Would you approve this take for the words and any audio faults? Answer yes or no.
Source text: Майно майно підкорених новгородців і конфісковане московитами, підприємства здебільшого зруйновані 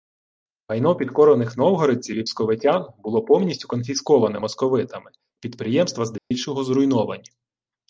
no